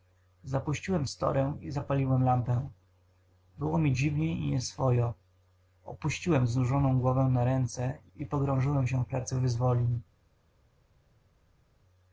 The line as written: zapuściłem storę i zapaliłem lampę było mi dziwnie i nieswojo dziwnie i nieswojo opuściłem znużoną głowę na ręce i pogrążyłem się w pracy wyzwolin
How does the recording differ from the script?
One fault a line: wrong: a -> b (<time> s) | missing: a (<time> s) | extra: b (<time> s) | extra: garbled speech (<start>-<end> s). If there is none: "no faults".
missing: dziwnie i nieswojo (5.1 s)